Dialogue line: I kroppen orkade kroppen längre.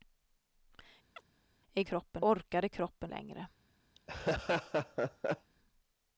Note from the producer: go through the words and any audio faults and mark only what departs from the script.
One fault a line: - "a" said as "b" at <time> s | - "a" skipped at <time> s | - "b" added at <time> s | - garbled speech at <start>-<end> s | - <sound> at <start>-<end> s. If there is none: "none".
- chirp at 1.2-1.3 s
- laugh at 4.0-5.5 s